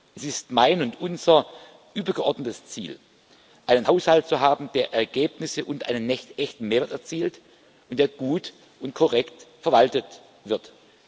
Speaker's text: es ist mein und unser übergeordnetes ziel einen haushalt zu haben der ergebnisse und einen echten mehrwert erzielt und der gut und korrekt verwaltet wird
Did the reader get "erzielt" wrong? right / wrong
right